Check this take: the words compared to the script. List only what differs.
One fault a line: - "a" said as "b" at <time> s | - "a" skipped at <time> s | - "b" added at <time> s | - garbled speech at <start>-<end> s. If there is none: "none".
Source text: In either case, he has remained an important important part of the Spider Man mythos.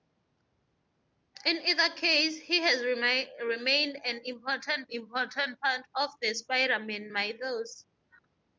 none